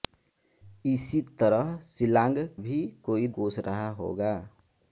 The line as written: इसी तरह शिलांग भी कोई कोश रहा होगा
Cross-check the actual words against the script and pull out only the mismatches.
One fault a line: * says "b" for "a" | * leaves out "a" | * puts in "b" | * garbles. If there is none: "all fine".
all fine